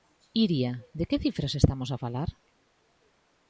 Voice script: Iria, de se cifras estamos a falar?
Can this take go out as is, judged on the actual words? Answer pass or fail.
fail